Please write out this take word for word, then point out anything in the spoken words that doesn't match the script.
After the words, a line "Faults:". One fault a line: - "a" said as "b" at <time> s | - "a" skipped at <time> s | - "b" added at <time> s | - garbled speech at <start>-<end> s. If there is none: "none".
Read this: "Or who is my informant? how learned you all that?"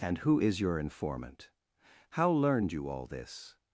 "And who is your informant? how learned you all this?"
Faults:
- "Or" said as "And" at 0.0 s
- "my" said as "your" at 0.6 s
- "that" said as "this" at 3.1 s